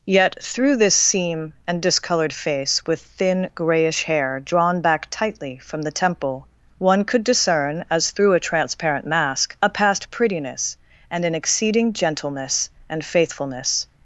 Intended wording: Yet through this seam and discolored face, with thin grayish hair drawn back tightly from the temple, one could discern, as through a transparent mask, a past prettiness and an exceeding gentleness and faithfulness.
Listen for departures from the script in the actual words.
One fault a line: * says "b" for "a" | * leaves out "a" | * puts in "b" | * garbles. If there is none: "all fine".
all fine